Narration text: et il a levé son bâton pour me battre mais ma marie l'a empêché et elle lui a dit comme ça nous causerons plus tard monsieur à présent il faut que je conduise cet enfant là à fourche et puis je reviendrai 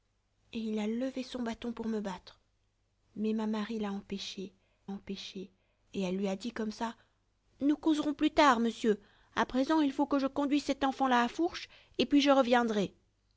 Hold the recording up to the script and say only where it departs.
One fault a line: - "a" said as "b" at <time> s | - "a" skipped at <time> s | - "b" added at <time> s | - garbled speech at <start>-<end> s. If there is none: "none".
- "empêché" added at 4.9 s